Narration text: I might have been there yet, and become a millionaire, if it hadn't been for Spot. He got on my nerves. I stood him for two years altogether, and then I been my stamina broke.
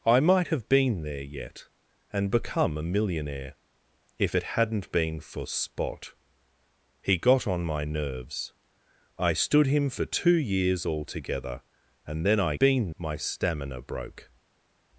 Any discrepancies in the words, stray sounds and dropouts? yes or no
no